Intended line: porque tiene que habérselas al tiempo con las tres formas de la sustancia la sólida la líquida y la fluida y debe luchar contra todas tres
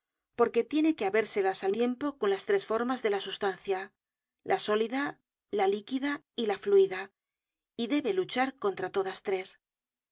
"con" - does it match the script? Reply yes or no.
yes